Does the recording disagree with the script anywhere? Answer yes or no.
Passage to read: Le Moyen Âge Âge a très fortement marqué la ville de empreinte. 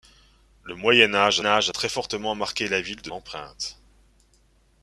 no